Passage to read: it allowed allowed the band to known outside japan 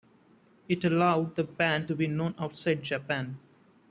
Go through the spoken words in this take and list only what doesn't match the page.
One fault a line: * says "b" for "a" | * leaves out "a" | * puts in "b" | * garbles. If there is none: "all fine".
* leaves out "allowed"
* puts in "be"